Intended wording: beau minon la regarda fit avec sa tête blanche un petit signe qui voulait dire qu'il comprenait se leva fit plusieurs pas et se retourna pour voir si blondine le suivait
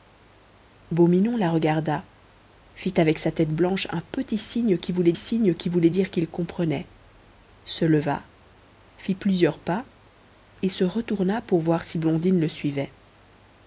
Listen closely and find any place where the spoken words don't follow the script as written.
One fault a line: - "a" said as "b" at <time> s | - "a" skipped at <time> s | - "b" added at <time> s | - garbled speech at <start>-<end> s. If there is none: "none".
- "signe qui voulait" added at 5.1 s